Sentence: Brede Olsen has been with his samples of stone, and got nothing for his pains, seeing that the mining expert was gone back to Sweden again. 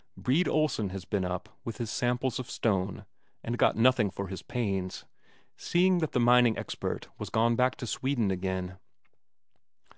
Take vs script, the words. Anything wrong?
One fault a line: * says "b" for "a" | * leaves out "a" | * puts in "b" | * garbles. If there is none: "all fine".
* puts in "up"